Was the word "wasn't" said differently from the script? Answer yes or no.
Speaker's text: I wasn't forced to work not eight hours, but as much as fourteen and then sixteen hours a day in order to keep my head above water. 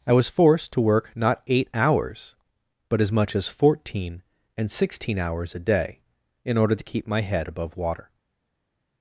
yes